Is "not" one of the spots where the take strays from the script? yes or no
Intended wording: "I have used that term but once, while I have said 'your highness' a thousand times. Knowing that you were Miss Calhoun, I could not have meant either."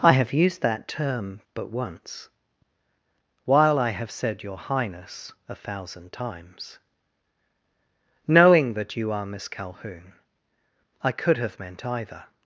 yes